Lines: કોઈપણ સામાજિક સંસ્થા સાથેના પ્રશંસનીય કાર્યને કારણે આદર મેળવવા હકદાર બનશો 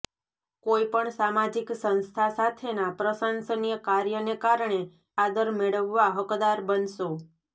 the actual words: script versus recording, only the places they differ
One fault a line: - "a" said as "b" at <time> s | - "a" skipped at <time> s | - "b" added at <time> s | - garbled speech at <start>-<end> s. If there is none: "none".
none